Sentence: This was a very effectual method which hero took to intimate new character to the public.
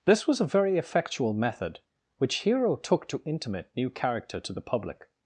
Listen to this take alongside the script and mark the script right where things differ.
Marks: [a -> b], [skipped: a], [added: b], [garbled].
This was a very effectual method which hero took to intimate new character to the public.